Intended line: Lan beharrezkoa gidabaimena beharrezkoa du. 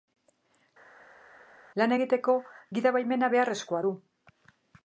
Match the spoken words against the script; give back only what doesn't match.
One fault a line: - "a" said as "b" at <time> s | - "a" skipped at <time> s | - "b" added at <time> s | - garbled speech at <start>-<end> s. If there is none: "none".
- "beharrezkoa" said as "egiteko" at 1.9 s